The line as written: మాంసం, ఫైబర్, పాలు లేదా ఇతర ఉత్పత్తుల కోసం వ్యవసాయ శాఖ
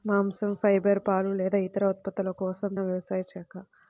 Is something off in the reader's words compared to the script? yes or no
no